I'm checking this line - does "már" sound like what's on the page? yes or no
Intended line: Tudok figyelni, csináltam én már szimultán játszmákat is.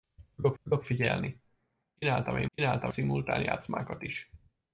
no